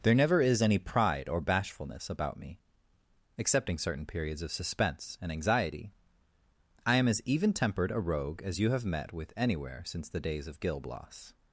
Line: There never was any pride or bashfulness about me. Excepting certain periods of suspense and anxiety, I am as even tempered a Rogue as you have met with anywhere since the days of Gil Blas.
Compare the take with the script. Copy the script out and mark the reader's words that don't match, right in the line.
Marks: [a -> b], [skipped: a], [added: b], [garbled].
There never [was -> is] any pride or bashfulness about me. Excepting certain periods of suspense and anxiety, I am as even tempered a Rogue as you have met with anywhere since the days of Gil Blas.